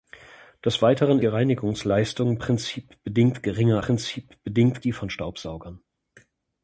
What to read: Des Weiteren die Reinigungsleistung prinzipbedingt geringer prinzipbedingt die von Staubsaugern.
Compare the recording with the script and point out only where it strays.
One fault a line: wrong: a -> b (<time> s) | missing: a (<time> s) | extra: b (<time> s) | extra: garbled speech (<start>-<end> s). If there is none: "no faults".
no faults